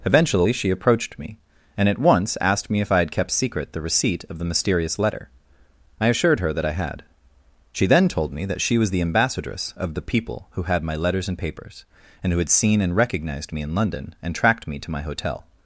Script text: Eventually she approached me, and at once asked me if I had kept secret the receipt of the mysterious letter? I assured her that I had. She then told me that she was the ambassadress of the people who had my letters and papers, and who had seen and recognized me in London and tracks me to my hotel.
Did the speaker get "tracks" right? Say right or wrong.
wrong